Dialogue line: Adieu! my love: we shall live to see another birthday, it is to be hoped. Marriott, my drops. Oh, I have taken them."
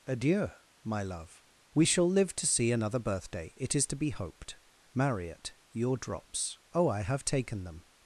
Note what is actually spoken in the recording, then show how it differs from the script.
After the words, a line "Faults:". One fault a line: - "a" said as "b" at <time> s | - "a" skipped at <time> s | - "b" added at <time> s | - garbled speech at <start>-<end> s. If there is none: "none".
Adieu! my love: we shall live to see another birthday, it is to be hoped. Marriott, your drops. Oh, I have taken them."
Faults:
- "my" said as "your" at 5.7 s